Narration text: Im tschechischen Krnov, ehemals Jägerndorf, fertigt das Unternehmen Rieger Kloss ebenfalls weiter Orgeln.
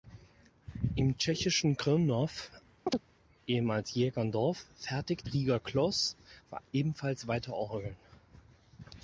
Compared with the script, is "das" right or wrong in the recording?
wrong